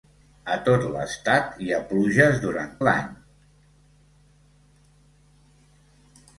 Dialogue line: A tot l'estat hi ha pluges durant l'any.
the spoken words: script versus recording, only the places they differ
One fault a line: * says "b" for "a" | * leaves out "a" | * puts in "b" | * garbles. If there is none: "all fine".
all fine